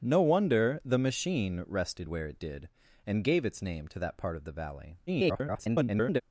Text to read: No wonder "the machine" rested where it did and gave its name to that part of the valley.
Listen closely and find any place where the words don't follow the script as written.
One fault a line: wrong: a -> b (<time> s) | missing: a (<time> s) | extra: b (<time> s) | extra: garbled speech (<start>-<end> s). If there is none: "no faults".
extra: garbled speech (5.1-6.2 s)